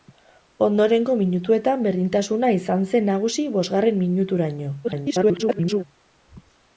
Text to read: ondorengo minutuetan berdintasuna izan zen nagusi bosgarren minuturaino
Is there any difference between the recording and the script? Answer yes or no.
yes